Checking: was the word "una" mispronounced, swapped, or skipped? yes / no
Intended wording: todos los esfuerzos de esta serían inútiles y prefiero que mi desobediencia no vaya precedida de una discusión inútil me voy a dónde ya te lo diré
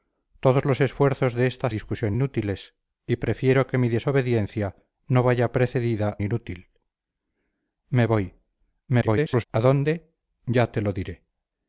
yes